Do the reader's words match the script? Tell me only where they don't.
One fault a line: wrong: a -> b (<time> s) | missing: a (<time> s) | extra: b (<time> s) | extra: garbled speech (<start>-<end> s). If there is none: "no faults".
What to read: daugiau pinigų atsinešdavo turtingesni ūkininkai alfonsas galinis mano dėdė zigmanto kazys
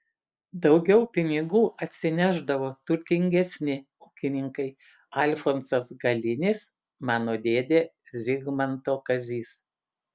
no faults